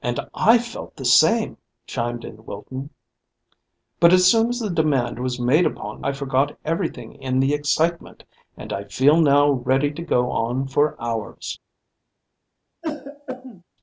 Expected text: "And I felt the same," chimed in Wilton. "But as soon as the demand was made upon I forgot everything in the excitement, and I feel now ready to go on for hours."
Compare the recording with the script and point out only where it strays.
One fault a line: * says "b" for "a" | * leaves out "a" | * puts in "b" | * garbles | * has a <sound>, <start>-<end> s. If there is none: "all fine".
* has a throat clearing, 12.8-13.6 s